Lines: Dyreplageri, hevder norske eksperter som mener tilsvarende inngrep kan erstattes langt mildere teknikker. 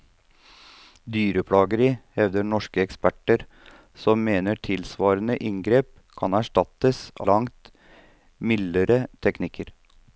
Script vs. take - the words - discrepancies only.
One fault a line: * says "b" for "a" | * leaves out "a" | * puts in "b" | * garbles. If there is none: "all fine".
all fine